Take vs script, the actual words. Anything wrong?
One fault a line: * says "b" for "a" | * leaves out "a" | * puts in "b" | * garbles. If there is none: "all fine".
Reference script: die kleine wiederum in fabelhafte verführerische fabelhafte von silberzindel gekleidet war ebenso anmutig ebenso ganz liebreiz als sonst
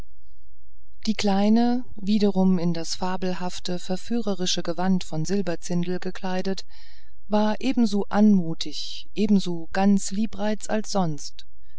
* puts in "das"
* says "gewand" for "fabelhafte"